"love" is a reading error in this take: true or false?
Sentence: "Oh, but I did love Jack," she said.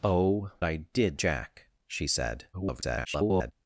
true